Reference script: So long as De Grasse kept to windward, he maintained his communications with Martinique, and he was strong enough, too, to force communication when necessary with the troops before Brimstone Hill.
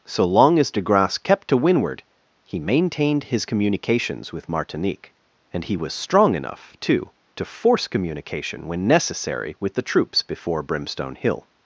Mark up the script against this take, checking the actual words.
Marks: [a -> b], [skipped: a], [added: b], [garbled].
So long as De Grasse kept to windward, he maintained his communications with Martinique, and he was strong enough, too, to force communication when necessary with the troops before Brimstone Hill.